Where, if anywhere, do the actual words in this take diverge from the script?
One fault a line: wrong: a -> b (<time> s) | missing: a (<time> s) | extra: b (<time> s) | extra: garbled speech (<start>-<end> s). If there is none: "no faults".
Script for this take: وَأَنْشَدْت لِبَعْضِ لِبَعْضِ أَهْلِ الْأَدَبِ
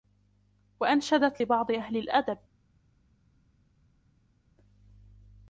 missing: لِبَعْضِ (1.7 s)